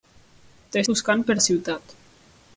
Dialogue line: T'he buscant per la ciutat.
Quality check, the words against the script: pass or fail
pass